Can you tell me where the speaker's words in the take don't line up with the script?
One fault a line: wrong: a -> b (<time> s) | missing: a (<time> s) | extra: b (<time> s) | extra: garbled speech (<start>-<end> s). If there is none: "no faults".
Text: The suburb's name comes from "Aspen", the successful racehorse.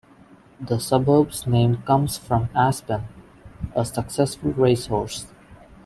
wrong: the -> a (3.8 s)